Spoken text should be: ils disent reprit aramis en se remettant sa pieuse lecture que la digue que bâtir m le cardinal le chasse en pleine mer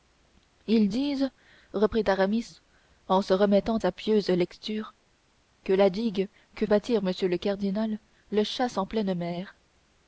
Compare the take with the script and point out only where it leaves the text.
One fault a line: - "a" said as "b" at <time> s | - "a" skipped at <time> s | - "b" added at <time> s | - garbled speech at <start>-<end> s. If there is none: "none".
none